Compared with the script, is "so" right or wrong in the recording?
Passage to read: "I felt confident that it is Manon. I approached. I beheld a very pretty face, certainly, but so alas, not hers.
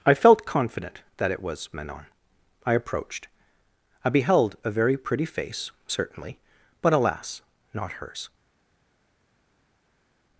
wrong